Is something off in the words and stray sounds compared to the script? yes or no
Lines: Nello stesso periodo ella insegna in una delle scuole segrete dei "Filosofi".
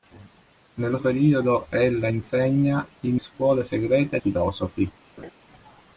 yes